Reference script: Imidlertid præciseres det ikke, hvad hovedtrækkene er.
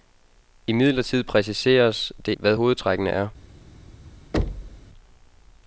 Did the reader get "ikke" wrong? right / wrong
wrong